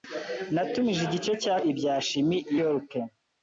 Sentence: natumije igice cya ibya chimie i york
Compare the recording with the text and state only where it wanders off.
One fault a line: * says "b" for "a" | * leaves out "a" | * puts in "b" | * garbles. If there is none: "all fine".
all fine